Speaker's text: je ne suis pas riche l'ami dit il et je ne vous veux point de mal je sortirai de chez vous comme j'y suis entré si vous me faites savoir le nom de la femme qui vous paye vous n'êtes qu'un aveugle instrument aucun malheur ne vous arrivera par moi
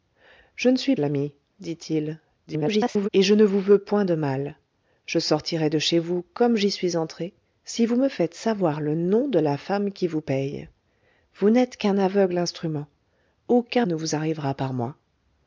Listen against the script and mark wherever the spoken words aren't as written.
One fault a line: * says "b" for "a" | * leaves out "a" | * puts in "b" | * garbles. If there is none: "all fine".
* leaves out "pas riche"
* garbles
* leaves out "malheur"